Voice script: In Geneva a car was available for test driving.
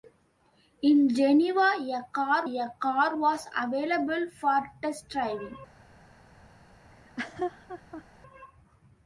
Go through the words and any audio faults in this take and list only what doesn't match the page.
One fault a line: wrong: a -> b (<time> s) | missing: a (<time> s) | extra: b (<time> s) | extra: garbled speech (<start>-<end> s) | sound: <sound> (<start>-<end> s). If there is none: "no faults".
extra: a car (2.4 s)
sound: laugh (6.9-8.0 s)